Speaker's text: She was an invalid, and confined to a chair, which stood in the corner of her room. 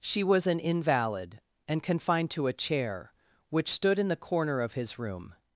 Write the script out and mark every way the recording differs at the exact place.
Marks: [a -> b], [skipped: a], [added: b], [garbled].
She was an invalid, and confined to a chair, which stood in the corner of [her -> his] room.